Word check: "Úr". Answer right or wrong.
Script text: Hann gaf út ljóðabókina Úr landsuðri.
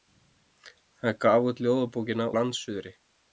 wrong